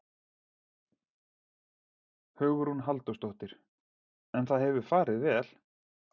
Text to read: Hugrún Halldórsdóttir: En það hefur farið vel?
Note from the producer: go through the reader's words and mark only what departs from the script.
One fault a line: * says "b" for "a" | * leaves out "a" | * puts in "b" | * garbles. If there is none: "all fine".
all fine